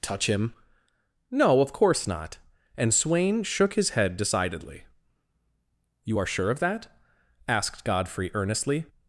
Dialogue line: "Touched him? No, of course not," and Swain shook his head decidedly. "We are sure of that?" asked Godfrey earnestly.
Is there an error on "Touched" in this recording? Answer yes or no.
yes